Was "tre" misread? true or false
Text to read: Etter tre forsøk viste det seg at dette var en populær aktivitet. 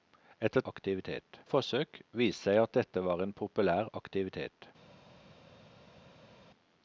true